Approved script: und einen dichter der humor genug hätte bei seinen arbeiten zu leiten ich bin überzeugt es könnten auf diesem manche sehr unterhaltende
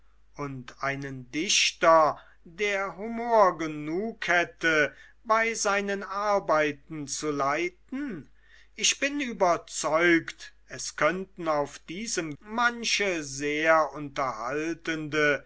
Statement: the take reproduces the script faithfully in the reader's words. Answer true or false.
true